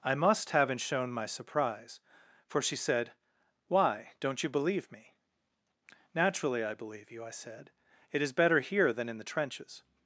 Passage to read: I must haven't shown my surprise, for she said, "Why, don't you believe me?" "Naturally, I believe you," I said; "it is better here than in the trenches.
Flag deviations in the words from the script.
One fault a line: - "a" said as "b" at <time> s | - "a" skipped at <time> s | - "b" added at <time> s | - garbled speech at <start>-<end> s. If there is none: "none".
none